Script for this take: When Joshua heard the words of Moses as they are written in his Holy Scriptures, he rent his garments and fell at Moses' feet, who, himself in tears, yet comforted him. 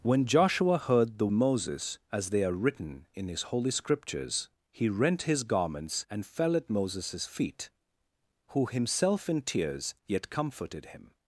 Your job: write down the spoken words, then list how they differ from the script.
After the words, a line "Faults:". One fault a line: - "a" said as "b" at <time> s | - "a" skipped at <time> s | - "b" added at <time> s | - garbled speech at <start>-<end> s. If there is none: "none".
When Joshua heard the Moses as they are written in his Holy Scriptures, he rent his garments and fell at Moses' feet, who, himself in tears, yet comforted him.
Faults:
- "words of" skipped at 1.3 s